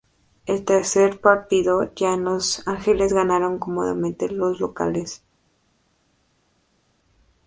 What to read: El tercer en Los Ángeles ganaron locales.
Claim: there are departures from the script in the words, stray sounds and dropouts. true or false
true